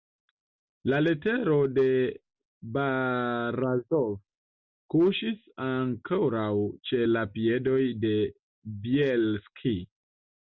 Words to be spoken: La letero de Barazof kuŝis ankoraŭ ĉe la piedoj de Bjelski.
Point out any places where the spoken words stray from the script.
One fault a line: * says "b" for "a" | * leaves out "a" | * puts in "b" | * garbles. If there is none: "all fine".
all fine